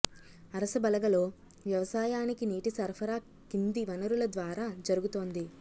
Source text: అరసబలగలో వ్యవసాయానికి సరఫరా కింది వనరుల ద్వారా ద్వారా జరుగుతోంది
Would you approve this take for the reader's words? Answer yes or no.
no